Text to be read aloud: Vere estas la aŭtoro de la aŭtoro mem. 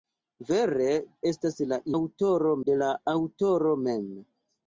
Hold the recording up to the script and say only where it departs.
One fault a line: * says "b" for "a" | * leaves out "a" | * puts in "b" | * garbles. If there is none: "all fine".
all fine